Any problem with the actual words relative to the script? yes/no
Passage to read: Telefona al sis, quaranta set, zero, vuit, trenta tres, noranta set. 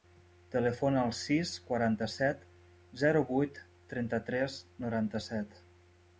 no